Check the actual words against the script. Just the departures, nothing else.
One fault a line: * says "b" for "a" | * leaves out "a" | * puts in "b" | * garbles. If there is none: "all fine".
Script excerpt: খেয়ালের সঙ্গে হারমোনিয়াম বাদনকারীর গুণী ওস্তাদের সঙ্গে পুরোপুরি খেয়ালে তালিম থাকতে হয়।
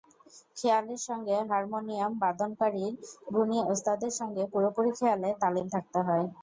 all fine